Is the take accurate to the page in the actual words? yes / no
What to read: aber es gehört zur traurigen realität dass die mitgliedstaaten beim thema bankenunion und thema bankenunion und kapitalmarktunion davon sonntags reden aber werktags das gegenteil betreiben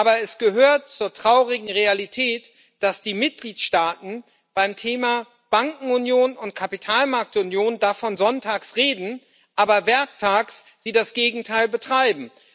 no